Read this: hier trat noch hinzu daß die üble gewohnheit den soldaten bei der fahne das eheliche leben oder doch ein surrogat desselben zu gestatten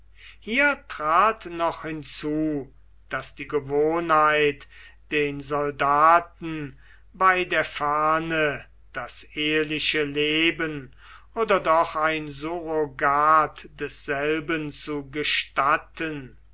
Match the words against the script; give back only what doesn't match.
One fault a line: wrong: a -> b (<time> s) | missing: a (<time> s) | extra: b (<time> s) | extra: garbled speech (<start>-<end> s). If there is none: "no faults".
missing: üble (3.5 s)